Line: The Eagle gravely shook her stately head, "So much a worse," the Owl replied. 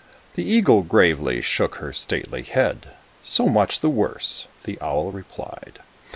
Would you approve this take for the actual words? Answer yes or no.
no